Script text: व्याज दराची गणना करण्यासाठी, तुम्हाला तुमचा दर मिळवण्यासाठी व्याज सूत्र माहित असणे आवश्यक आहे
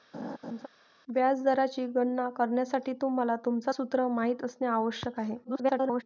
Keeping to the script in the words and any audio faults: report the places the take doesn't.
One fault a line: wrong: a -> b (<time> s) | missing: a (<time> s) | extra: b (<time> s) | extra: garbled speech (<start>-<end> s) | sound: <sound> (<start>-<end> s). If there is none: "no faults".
sound: laugh (0.1-0.7 s)
missing: दर मिळवण्यासाठी व्याज (3.7 s)
extra: garbled speech (5.4-6.0 s)